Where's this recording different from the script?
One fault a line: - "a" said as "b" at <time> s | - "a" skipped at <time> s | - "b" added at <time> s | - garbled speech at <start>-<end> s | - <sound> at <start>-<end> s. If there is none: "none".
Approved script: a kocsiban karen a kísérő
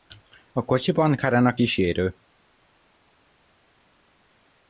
none